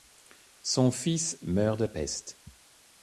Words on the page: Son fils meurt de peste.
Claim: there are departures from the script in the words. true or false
false